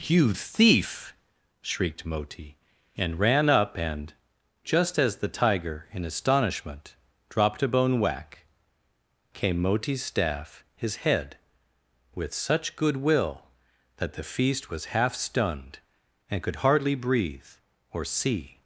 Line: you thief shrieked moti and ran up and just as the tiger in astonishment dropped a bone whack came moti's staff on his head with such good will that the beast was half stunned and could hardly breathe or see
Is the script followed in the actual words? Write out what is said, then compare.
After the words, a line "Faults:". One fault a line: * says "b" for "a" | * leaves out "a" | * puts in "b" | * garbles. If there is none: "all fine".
you thief shrieked moti and ran up and just as the tiger in astonishment dropped a bone whack came moti's staff his head with such good will that the feast was half stunned and could hardly breathe or see
Faults:
* leaves out "on"
* says "feast" for "beast"